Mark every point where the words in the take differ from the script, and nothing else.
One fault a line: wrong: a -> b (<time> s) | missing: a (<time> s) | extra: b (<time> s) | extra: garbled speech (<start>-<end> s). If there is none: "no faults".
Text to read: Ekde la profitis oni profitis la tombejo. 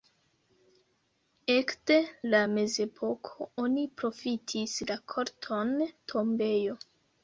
wrong: profitis -> mezepoko (2.5 s)
extra: korton (5.2 s)